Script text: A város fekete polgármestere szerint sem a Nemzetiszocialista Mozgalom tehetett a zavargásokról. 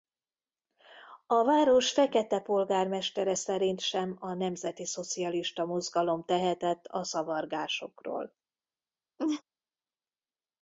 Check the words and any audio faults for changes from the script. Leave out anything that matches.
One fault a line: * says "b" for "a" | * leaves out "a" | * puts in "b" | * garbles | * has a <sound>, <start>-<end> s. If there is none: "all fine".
* has a laugh, 9.2-9.4 s